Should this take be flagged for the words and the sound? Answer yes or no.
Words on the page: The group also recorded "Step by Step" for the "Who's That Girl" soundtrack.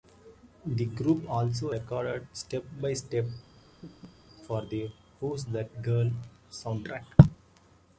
yes